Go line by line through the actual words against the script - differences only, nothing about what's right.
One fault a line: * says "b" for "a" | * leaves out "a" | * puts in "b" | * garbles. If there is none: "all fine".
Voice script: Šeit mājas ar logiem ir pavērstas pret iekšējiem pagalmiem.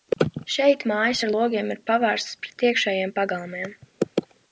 all fine